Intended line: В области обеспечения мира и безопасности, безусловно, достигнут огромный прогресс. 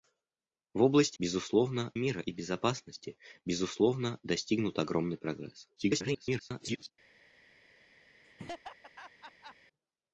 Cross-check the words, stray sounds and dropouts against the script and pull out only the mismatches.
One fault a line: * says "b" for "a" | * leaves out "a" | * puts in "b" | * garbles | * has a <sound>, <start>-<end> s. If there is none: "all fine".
* says "безусловно" for "обеспечения"
* garbles
* has a laugh, 8.2-9.6 s